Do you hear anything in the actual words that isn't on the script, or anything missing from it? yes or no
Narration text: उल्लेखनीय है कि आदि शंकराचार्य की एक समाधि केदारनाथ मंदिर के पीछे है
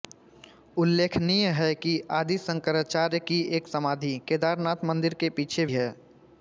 no